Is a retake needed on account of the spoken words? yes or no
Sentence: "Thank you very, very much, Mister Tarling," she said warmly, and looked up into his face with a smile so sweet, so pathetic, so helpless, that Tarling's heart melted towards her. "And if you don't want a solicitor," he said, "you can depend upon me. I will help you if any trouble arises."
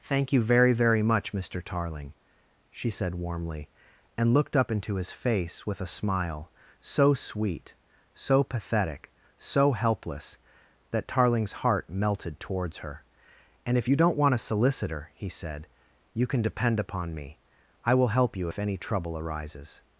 no